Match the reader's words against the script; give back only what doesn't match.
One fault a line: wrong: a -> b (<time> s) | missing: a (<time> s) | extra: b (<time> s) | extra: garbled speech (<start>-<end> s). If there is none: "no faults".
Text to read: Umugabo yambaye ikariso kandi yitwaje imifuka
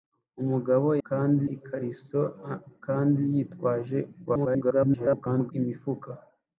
wrong: yambaye -> kandi (1.1 s)
extra: garbled speech (4.3-5.5 s)